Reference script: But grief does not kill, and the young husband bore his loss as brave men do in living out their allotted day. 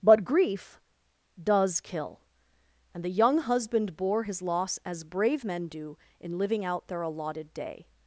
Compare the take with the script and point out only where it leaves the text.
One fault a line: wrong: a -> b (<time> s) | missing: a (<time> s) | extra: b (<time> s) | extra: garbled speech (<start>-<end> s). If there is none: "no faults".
missing: not (1.8 s)